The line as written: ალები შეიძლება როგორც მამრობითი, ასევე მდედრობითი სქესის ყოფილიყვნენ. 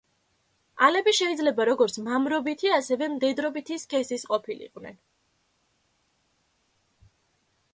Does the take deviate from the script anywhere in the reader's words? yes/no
no